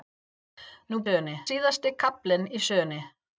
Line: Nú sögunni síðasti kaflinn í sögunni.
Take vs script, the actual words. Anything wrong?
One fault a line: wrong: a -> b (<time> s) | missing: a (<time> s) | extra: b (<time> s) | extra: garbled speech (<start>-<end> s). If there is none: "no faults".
no faults